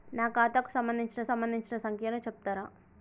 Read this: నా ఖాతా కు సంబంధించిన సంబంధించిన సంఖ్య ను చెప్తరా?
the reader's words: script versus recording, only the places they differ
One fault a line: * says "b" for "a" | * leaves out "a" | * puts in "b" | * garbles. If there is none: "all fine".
all fine